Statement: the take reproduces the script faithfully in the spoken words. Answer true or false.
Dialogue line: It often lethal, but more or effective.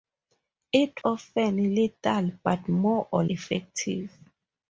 true